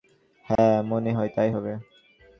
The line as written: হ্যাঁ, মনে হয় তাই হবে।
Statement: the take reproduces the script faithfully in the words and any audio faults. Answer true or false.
false